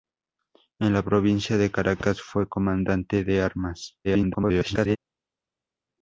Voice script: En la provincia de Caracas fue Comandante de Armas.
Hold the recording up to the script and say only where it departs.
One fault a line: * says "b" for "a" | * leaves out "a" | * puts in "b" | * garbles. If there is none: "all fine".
* garbles